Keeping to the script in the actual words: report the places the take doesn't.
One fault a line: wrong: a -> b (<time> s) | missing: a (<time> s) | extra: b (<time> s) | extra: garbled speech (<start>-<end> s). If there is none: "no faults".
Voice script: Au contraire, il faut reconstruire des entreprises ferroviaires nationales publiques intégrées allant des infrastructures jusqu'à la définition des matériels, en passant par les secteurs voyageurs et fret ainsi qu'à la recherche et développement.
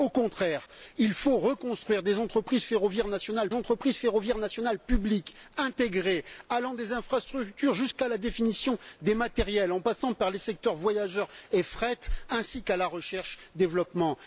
extra: entreprises ferroviaires nationales (3.5 s)